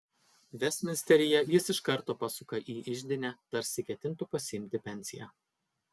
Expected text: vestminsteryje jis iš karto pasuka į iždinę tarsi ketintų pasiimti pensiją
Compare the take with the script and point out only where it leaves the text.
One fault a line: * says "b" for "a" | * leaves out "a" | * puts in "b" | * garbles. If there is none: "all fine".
all fine